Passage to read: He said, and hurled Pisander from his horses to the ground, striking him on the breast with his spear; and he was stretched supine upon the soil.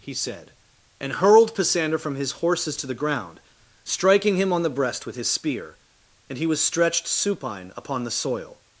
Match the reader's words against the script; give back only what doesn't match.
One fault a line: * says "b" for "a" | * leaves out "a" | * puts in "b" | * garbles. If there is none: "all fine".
all fine